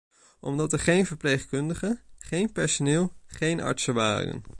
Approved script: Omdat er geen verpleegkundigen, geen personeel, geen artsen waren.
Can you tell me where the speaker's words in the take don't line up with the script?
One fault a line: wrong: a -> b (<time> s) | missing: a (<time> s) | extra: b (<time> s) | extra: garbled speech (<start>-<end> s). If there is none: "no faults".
no faults